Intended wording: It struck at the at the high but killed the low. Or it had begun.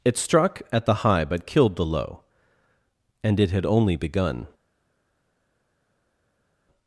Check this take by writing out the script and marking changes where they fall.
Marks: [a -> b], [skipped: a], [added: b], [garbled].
It struck at the [skipped: at the] high but killed the low. [Or -> And] it had [added: only] begun.